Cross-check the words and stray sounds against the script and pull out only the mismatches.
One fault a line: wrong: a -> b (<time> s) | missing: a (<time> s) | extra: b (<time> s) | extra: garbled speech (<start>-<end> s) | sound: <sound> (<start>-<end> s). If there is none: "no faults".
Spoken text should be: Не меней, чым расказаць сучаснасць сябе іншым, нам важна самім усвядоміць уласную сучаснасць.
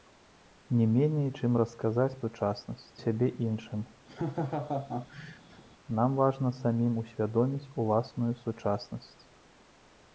sound: laugh (4.1-5.6 s)